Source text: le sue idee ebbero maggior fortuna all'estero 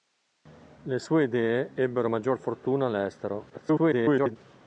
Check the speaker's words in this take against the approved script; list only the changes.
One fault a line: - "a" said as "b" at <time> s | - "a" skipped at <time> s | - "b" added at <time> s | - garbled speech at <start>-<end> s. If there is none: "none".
- garbled speech at 3.5-4.4 s